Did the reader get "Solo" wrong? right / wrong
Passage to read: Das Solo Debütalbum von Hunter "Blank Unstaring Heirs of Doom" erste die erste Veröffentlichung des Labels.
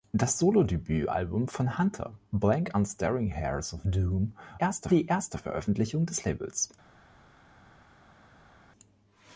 right